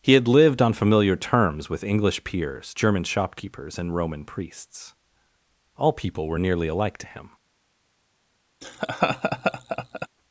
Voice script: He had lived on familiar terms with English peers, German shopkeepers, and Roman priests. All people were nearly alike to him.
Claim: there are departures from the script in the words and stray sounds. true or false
true